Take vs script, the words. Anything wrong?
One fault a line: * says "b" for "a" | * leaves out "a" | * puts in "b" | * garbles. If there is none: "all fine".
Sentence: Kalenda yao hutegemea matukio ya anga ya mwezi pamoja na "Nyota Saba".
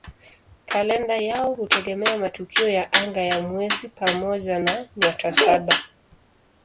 all fine